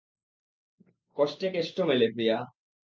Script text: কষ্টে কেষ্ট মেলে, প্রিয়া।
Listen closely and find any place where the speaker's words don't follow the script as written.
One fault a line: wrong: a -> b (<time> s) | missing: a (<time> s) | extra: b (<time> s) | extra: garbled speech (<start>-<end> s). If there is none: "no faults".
no faults